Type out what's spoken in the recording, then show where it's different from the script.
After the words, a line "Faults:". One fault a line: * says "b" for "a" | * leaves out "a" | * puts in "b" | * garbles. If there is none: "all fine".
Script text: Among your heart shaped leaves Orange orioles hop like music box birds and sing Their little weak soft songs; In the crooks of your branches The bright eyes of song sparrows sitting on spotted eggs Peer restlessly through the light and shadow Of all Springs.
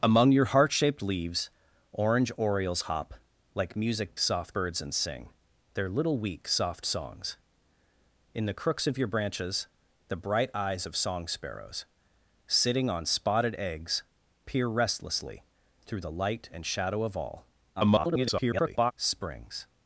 Among your heart shaped leaves Orange orioles hop like music soft birds and sing Their little weak soft songs; In the crooks of your branches The bright eyes of song sparrows sitting on spotted eggs Peer restlessly through the light and shadow Of all [garbled] Springs.
Faults:
* says "soft" for "box"
* garbles